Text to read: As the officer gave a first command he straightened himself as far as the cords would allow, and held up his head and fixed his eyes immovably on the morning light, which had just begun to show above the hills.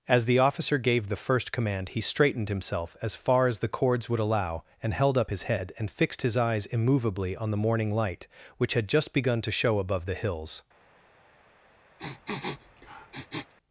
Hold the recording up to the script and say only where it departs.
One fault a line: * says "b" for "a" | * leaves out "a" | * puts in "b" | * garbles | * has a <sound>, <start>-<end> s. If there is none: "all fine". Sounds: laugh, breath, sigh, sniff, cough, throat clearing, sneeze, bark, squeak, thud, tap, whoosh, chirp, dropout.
* says "the" for "a"
* has a sniff, 12.0-13.5 s